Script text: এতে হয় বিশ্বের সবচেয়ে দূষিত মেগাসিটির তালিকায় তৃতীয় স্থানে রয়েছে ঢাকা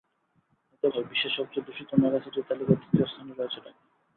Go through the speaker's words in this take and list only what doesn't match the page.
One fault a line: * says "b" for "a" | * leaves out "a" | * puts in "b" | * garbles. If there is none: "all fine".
all fine